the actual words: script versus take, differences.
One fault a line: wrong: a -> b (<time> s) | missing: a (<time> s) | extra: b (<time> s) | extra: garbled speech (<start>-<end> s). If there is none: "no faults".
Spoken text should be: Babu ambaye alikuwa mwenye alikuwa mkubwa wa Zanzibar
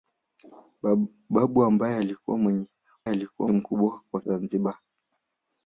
no faults